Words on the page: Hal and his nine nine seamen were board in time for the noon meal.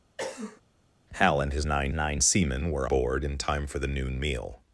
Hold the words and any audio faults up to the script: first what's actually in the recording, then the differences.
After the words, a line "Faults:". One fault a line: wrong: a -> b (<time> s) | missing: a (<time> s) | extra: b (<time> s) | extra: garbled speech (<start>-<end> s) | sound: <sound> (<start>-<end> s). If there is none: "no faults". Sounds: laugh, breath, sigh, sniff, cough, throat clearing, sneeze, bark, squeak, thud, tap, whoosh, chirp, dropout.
Hal and his nine nine seamen were board in time for the noon meal.
Faults:
sound: cough (0.2-0.6 s)